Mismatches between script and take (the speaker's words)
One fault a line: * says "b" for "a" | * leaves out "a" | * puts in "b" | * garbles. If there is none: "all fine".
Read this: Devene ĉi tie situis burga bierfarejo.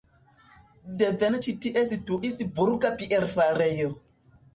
all fine